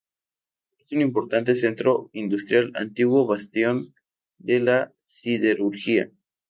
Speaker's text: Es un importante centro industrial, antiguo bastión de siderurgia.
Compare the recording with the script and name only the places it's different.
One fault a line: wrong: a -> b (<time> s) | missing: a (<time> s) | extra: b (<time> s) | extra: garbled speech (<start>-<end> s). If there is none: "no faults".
extra: la (4.6 s)